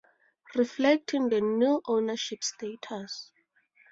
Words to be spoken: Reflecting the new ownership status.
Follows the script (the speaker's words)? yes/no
yes